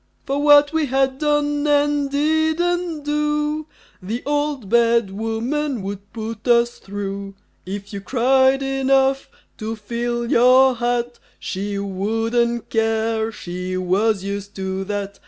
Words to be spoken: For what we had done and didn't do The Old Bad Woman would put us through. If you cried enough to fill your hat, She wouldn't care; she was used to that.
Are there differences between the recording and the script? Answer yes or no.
no